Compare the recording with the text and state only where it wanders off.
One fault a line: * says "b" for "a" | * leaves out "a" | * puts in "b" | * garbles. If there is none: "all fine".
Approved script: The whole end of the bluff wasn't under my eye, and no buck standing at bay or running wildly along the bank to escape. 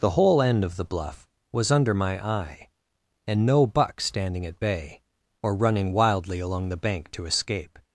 * says "was" for "wasn't"